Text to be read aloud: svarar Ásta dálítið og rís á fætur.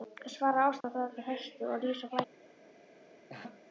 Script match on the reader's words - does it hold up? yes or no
no